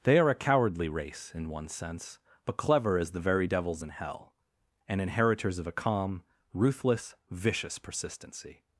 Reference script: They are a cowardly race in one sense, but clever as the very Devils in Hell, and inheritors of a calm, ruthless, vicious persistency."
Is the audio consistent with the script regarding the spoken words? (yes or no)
yes